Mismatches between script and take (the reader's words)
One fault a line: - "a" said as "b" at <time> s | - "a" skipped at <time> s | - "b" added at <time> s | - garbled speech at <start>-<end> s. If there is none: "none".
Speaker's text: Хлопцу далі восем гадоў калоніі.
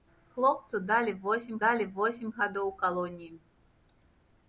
- "далі восем" added at 1.6 s